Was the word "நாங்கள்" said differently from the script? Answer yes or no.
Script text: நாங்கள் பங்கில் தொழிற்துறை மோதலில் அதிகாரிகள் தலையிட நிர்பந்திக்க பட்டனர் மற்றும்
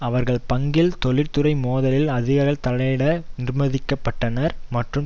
yes